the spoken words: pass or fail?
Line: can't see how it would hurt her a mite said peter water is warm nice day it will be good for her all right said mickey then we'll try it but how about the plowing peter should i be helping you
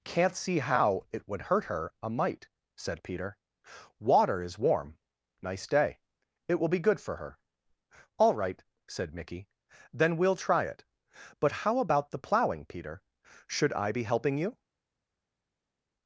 pass